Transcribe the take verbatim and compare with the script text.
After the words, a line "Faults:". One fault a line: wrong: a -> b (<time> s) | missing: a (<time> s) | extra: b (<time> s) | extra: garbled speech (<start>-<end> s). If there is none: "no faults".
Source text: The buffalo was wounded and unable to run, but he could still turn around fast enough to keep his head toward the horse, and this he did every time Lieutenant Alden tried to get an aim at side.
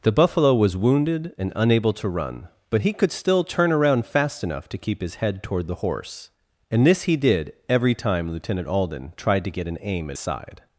The buffalo was wounded and unable to run, but he could still turn around fast enough to keep his head toward the horse, and this he did every time Lieutenant Alden tried to get an aim at side.
Faults:
no faults